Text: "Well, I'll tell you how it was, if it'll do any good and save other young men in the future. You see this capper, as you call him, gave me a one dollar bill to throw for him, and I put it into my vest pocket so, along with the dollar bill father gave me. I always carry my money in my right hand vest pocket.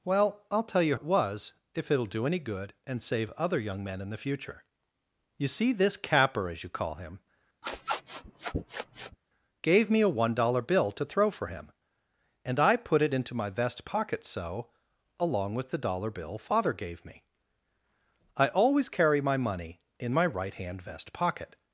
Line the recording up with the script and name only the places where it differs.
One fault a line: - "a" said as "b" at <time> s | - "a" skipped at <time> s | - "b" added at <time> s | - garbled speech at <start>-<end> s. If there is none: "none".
- "how" skipped at 1.0 s